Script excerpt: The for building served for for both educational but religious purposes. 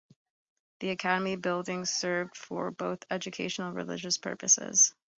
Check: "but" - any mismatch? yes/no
yes